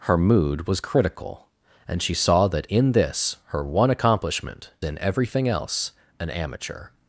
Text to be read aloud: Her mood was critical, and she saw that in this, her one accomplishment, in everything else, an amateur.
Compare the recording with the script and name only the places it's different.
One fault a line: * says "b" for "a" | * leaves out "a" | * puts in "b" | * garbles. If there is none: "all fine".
all fine